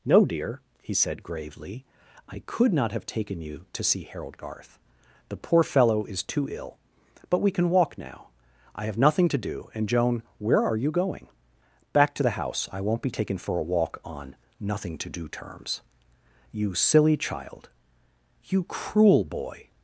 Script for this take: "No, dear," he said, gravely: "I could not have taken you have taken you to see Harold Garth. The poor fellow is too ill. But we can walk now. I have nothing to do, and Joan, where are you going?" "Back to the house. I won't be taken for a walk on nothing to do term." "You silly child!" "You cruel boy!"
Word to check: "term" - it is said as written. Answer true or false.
false